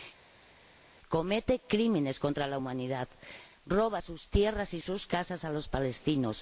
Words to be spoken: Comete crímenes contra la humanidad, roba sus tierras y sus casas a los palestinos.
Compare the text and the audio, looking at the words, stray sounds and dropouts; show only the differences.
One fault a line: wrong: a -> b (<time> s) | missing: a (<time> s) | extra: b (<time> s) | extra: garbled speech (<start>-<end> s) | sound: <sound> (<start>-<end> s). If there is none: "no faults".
no faults